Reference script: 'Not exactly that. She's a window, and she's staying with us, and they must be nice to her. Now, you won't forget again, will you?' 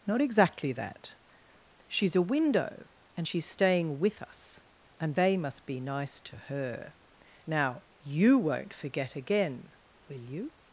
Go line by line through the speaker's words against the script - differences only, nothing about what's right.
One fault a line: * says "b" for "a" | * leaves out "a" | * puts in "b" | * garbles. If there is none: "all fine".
all fine